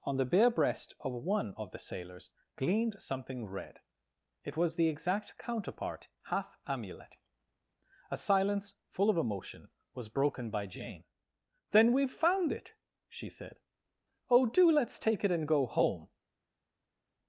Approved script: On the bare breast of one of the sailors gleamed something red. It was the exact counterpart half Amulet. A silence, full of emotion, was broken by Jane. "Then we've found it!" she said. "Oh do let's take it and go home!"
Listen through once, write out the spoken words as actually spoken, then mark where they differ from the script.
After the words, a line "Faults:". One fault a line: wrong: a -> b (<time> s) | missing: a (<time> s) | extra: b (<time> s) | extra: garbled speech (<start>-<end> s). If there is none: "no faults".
On the bare breast of one of the sailors gleamed something red. It was the exact counterpart half Amulet. A silence, full of emotion, was broken by Jane. "Then we've found it!" she said. "Oh do let's take it and go home!"
Faults:
no faults